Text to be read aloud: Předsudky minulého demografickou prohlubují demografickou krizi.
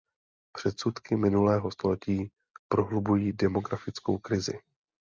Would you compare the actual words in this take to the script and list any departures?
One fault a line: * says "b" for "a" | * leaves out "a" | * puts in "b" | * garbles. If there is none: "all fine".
* says "století" for "demografickou"